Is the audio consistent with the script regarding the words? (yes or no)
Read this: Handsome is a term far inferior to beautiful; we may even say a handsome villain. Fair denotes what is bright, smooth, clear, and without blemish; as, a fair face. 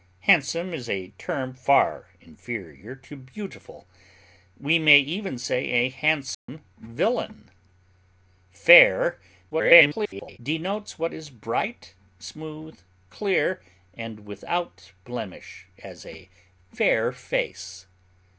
no